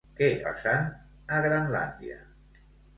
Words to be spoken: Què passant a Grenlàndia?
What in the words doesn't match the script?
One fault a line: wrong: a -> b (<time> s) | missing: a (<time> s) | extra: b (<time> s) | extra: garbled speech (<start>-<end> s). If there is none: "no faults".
no faults